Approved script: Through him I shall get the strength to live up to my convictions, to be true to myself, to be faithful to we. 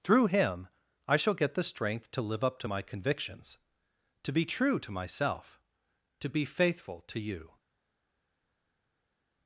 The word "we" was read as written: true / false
false